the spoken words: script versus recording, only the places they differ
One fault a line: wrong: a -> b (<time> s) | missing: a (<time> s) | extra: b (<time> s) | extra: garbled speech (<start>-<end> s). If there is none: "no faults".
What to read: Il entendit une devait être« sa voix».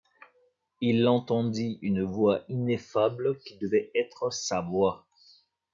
extra: voix ineffable qui (2.0 s)